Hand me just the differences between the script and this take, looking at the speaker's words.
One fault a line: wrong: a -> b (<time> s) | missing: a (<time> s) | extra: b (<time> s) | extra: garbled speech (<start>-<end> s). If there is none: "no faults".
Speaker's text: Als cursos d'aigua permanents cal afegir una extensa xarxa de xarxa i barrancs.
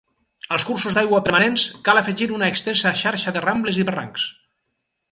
wrong: xarxa -> rambles (3.5 s)